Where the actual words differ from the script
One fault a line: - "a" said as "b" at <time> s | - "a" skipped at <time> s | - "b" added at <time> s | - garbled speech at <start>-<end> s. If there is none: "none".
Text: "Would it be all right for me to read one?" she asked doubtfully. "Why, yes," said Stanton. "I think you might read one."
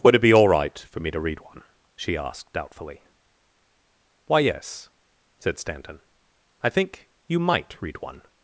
none